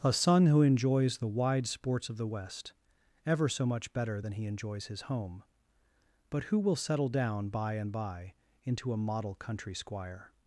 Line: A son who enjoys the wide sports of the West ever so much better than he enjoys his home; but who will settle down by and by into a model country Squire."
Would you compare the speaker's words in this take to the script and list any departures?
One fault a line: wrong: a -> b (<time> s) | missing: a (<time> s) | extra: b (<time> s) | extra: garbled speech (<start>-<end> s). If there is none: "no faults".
no faults